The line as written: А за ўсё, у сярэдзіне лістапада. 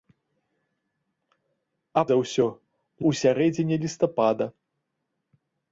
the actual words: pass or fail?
pass